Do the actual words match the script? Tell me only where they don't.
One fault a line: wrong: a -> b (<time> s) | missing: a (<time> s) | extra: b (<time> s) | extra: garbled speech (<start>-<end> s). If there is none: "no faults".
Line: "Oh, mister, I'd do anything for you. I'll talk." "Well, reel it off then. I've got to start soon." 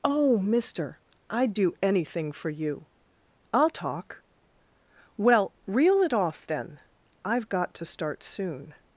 no faults